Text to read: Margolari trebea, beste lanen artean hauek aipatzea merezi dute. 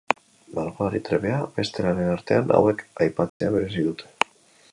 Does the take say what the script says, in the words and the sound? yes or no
no